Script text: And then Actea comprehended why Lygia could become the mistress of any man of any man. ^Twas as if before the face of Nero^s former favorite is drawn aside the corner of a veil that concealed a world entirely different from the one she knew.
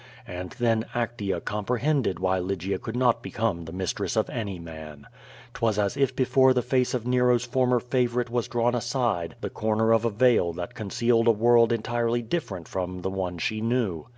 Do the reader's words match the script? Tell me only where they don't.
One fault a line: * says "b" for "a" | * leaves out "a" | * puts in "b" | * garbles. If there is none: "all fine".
* puts in "not"
* leaves out "of any man"
* says "was" for "is"